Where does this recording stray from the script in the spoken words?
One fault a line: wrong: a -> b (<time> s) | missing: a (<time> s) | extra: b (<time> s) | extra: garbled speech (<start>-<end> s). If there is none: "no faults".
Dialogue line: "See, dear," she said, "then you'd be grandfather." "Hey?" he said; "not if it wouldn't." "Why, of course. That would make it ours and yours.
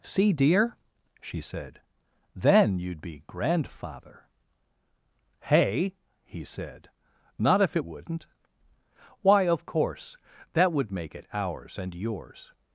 no faults